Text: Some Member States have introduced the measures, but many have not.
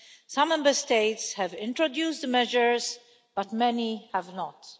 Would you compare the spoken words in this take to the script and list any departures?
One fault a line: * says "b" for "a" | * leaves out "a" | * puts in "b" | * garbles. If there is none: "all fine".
all fine